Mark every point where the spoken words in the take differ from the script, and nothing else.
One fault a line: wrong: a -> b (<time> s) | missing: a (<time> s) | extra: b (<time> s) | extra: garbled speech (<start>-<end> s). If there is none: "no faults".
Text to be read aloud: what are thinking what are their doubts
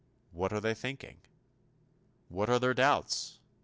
extra: they (0.6 s)